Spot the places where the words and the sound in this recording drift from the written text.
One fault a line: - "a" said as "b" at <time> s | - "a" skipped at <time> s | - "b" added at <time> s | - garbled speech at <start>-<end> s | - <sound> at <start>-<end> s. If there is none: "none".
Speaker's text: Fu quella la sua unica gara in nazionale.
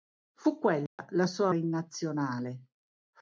- dropout at 0.9-1.0 s
- "unica gara" skipped at 1.5 s